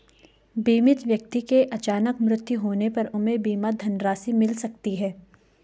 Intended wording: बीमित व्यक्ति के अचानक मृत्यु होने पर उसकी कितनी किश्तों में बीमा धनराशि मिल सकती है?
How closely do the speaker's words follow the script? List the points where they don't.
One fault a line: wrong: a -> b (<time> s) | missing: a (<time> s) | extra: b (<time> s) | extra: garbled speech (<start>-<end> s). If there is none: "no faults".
missing: उसकी कितनी किश्तों (3.0 s)